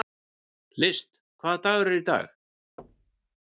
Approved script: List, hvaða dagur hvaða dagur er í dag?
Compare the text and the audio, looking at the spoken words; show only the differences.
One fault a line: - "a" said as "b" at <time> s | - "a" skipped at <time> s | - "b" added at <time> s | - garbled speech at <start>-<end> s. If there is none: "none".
- "hvaða dagur" skipped at 1.9 s